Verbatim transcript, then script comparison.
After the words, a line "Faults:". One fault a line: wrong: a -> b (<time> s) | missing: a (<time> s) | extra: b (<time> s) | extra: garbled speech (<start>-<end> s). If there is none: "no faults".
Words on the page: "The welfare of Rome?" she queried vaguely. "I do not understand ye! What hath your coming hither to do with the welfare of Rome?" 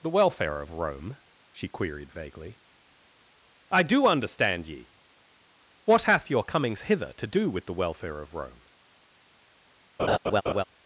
"The welfare of Rome?" she queried vaguely. "I do understand ye! What hath your comings hither to do with the welfare of Rome?"
Faults:
missing: not (4.1 s)
wrong: coming -> comings (6.4 s)